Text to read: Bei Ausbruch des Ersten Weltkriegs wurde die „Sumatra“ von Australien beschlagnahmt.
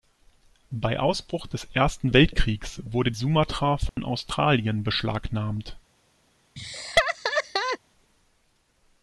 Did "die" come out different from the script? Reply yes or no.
yes